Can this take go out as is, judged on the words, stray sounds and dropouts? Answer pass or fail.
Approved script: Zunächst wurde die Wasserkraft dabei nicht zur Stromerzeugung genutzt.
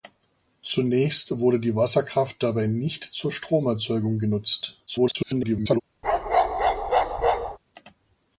fail